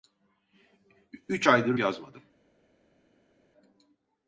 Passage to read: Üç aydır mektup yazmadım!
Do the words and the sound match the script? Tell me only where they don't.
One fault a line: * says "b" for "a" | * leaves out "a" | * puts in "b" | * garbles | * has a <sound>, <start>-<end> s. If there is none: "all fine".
* leaves out "mektup"